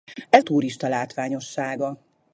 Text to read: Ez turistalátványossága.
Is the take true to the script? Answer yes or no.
yes